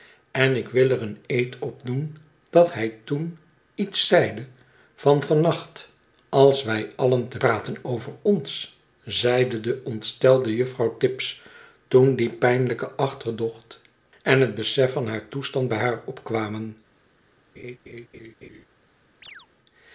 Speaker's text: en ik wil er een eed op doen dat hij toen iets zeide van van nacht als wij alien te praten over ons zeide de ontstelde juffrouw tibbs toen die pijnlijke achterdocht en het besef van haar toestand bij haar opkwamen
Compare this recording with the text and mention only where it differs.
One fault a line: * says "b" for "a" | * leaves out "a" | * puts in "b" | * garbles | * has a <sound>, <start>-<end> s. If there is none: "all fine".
* has a laugh, 17.6-18.7 s
* has a chirp, 19.2-19.5 s